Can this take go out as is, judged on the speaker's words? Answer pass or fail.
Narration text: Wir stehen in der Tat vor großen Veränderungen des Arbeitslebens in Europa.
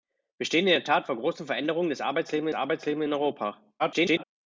fail